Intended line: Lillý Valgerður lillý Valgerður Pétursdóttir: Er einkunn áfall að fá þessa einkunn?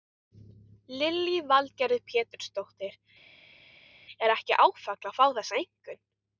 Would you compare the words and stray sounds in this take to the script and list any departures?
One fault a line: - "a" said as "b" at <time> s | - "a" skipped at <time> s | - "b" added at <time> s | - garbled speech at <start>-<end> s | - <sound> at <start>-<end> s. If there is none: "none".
- "lillý Valgerður" skipped at 2.0 s
- "einkunn" said as "ekki" at 4.4 s